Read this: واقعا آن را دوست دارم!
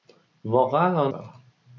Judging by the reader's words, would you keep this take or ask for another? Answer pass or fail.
fail